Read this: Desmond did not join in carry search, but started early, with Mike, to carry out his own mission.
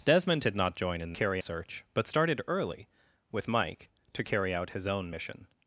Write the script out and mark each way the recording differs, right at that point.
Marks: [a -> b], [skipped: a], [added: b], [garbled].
Desmond did not join in carry search, but started early, with Mike, to carry out his own mission.